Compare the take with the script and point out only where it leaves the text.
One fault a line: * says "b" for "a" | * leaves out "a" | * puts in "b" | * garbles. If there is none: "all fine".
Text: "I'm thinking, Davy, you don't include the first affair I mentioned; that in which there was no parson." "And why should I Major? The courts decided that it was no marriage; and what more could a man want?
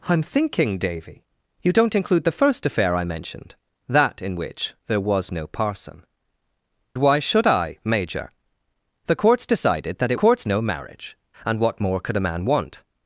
* leaves out "And"
* says "courts" for "was"